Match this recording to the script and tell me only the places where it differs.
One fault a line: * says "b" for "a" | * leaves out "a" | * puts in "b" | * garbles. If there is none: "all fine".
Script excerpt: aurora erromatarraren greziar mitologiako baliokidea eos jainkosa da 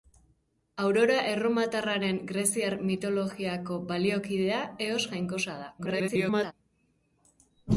* garbles